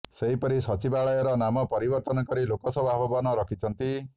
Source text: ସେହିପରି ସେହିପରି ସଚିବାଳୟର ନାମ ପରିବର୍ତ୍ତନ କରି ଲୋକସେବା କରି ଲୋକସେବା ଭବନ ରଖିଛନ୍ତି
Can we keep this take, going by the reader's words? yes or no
no